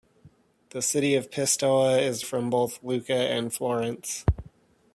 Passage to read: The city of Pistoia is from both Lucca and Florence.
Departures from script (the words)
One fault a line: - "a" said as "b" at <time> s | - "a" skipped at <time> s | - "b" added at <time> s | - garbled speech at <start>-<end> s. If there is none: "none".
none